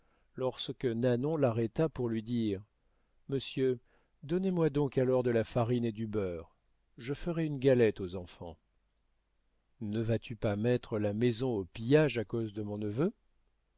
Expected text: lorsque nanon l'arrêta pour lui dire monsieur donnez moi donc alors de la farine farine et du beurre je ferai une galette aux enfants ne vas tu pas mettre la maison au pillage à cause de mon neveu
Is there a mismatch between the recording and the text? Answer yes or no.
yes